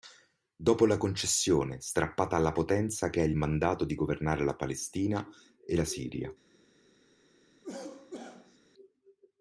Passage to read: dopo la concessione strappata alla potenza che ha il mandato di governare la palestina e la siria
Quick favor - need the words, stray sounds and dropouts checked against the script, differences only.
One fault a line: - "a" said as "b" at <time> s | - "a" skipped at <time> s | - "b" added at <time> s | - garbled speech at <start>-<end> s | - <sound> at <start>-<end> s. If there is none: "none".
- cough at 7.6-8.6 s